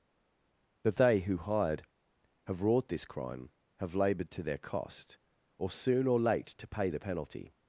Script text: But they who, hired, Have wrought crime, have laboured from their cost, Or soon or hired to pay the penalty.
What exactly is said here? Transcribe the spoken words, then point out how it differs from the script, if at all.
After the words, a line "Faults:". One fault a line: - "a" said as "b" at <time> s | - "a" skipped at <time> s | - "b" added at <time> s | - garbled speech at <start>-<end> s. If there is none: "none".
But they who, hired, Have wrought this crime, have laboured to their cost, Or soon or late to pay the penalty.
Faults:
- "this" added at 2.9 s
- "from" said as "to" at 4.3 s
- "hired" said as "late" at 6.2 s